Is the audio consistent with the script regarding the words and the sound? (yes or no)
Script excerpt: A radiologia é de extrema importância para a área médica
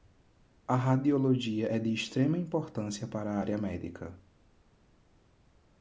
yes